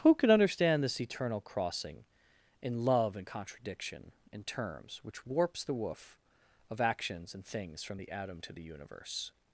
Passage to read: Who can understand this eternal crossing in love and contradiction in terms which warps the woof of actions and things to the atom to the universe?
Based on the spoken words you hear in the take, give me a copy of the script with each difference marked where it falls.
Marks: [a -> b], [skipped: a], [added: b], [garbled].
Who can understand this eternal crossing in love and contradiction in terms which warps the woof of actions and things [to -> from] the atom to the universe?